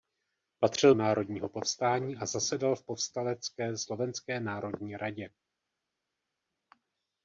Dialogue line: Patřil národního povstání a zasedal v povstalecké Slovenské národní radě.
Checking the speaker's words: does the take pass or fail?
pass